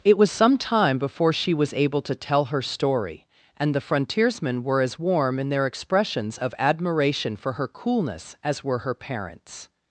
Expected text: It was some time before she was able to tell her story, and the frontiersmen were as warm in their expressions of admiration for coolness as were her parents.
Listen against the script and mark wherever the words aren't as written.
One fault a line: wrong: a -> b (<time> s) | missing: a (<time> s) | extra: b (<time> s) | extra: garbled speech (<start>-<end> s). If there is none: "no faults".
extra: her (7.5 s)